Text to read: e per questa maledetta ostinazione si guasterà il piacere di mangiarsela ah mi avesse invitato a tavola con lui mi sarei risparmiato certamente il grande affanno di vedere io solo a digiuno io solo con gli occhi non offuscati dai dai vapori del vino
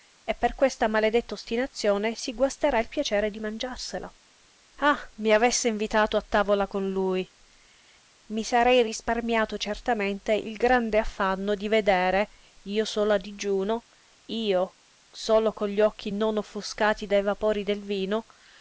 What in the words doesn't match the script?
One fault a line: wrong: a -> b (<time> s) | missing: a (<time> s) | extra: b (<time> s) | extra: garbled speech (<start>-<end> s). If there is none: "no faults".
missing: dai (17.2 s)